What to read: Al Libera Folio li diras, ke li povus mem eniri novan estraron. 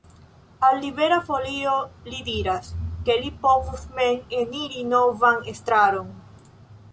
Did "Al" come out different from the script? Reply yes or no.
no